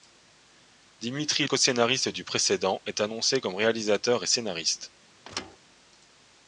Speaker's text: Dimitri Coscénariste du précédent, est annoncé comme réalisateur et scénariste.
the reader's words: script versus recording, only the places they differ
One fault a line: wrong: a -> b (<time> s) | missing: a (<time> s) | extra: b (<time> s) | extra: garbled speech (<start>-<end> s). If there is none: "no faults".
no faults